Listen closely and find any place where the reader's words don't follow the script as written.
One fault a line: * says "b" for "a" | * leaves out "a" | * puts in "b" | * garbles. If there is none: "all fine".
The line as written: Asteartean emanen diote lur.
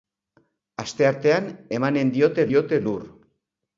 * puts in "diote"